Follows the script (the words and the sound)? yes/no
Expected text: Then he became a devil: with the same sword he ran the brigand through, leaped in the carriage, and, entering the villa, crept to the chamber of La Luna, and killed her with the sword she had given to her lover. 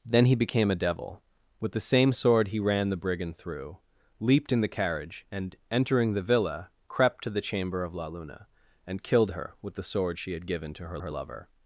no